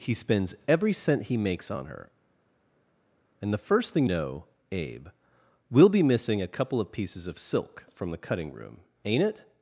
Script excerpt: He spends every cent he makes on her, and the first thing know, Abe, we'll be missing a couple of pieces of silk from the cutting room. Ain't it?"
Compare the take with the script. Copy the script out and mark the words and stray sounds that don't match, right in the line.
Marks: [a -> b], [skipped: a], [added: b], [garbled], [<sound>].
He spends every cent he makes on her, and the first thing know, Abe, we'll be missing a couple of pieces of silk from the cutting room. Ain't it?"